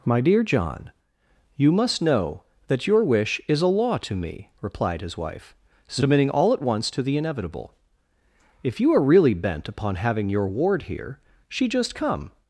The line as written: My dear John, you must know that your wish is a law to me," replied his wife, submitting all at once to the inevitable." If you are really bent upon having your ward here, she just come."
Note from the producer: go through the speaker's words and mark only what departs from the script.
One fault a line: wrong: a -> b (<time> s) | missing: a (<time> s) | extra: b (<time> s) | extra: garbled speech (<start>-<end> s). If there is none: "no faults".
no faults